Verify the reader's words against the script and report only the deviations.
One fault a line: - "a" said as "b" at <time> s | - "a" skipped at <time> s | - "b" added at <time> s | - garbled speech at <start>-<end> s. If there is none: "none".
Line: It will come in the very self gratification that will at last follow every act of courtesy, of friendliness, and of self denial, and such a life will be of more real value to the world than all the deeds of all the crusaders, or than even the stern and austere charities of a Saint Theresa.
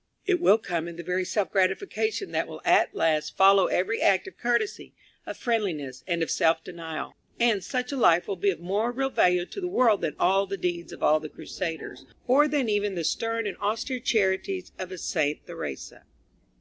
none